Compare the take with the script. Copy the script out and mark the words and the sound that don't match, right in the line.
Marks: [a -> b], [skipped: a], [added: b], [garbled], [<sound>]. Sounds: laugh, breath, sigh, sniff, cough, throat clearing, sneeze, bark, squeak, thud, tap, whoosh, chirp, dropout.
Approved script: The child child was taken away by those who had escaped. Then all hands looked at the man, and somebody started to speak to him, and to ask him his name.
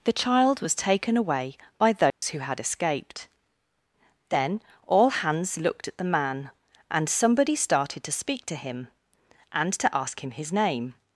The child [skipped: child] was taken away by those [dropout] who had escaped. Then all hands looked at the man, and somebody started to speak to him, and to ask him his name.